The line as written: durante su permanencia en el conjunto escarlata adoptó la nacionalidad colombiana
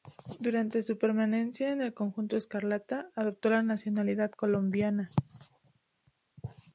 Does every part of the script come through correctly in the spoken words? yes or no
yes